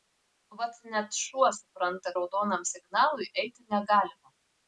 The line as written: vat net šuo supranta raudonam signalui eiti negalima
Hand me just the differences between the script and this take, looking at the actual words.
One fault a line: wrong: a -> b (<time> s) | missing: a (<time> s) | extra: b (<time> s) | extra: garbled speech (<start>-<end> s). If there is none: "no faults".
no faults